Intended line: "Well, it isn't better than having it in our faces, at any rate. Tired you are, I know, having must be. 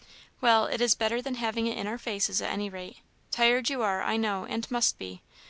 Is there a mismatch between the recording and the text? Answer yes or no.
yes